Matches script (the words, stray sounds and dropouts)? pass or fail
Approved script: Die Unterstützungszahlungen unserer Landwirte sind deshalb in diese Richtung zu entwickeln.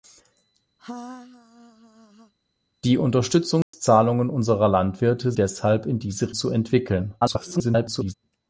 fail